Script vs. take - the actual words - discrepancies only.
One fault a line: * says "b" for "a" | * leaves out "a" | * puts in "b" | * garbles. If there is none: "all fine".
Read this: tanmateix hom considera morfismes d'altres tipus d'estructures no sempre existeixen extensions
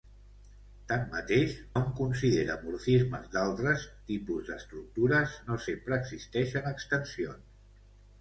all fine